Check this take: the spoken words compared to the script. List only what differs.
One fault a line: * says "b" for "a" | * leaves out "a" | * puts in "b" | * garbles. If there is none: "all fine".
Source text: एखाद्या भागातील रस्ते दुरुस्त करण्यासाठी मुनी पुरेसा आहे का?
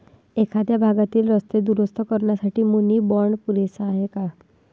* puts in "बाँड"